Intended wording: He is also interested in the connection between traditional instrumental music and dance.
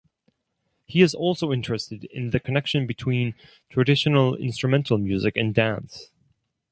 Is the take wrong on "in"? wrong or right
right